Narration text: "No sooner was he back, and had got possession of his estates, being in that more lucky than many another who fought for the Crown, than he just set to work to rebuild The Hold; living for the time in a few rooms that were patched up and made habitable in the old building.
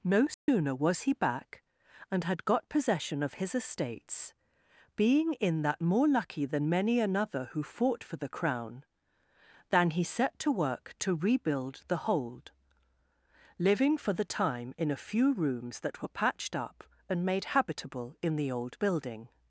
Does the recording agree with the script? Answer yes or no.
no